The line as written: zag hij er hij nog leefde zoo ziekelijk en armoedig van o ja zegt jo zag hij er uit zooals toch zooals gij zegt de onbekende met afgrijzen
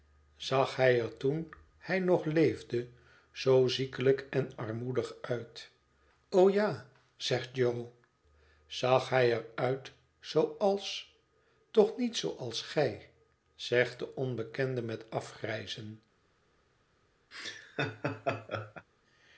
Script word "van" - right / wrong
wrong